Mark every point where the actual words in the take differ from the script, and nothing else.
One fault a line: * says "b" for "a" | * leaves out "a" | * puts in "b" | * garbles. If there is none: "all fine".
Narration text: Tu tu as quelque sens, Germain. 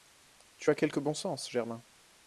* leaves out "tu"
* puts in "bon"